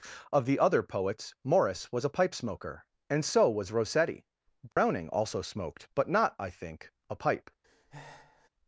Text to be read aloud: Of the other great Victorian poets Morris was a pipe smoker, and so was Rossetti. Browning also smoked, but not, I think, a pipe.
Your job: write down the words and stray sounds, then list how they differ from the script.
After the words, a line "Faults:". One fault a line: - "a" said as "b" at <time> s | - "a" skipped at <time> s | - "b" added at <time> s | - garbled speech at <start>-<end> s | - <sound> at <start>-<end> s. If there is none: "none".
Of the other poets Morris was a pipe smoker, and so was Rossetti. Browning also smoked, but not, I think, a pipe.
Faults:
- "great Victorian" skipped at 0.8 s
- dropout at 4.7-4.8 s
- breath at 7.6-8.5 s